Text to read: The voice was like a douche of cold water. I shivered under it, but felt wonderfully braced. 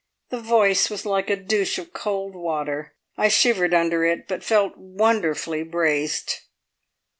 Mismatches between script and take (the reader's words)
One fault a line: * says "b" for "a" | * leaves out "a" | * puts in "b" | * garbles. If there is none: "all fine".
all fine